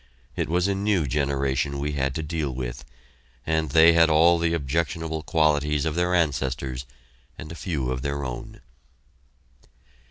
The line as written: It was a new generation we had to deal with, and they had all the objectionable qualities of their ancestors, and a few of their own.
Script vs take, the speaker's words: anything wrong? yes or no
no